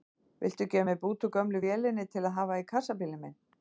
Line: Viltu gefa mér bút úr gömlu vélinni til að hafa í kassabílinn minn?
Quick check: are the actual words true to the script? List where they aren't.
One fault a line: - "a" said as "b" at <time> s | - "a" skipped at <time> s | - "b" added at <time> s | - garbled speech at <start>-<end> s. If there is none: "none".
none